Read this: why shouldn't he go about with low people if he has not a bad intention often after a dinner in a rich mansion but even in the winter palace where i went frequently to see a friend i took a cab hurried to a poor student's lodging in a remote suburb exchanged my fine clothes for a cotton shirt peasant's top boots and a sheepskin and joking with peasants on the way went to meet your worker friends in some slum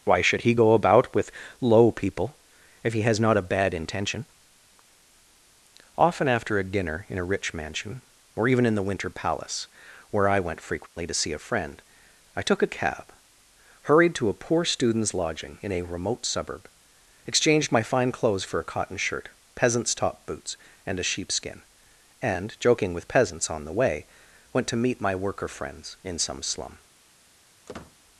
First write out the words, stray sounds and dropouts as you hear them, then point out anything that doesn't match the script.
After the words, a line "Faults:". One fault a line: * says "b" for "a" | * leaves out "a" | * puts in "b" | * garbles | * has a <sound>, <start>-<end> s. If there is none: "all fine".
why should he go about with low people if he has not a bad intention often after a dinner in a rich mansion or even in the winter palace where i went frequently to see a friend i took a cab hurried to a poor student's lodging in a remote suburb exchanged my fine clothes for a cotton shirt peasant's top boots and a sheepskin and joking with peasants on the way went to meet my worker friends in some slum
Faults:
* says "should" for "shouldn't"
* says "or" for "but"
* has a dropout, 10.9-11.0 s
* says "my" for "your"
* has a squeak, 27.7-28.0 s